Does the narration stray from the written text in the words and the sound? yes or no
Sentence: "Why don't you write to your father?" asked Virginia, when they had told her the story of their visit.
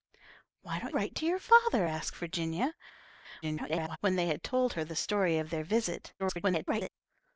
yes